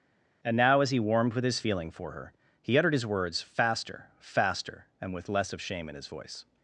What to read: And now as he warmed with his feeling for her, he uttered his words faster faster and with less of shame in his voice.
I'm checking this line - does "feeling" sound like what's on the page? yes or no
yes